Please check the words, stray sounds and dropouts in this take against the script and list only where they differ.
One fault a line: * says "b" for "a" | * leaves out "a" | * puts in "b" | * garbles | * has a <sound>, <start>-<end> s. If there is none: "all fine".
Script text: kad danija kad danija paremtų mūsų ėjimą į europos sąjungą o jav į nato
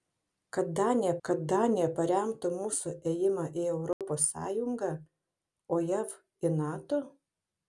* has a dropout, 3.9-4.0 s